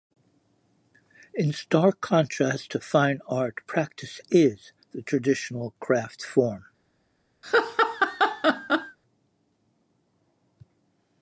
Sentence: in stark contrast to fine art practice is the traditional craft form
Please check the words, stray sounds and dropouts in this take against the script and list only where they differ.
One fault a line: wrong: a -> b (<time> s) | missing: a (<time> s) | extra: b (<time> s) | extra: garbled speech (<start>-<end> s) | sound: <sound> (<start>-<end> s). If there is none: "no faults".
sound: laugh (7.4-9.0 s)